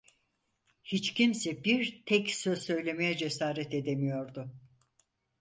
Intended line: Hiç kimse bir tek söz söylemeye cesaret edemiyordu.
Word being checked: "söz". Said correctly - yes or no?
yes